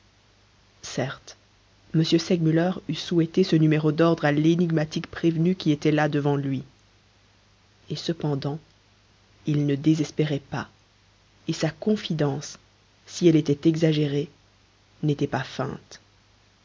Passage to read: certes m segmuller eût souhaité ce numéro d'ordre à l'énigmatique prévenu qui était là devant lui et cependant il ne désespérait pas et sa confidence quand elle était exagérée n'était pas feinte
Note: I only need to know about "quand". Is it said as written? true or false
false